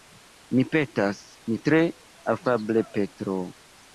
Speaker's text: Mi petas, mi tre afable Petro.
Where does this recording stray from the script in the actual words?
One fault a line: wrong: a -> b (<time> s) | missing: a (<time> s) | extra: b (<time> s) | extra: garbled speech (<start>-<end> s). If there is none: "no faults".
no faults